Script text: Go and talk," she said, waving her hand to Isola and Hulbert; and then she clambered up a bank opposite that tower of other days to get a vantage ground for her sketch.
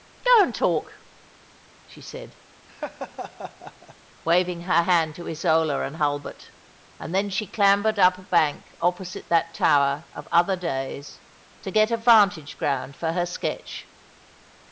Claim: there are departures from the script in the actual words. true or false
false